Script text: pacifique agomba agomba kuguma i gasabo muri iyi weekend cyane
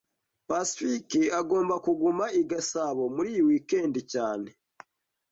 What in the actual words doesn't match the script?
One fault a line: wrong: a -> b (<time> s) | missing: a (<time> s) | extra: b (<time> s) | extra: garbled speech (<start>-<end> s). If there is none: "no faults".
missing: agomba (1.8 s)